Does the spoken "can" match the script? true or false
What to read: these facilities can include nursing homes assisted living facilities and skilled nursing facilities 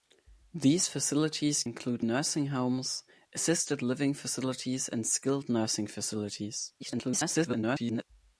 false